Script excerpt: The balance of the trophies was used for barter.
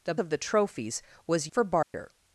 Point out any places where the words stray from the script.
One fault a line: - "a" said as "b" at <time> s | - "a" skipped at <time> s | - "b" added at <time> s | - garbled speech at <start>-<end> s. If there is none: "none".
- "balance" skipped at 0.1 s
- "used" skipped at 1.5 s